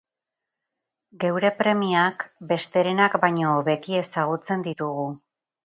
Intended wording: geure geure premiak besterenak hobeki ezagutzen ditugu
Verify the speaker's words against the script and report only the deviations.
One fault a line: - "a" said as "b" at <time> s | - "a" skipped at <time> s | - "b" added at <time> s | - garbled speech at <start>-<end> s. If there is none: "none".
- "geure" skipped at 1.5 s
- "baino" added at 3.3 s